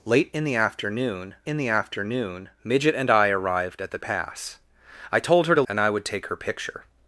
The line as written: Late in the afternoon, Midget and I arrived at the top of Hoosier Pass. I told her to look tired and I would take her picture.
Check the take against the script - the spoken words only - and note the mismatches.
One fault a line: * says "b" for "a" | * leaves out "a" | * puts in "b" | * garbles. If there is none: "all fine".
* puts in "in the afternoon"
* leaves out "top of Hoosier"
* leaves out "look tired"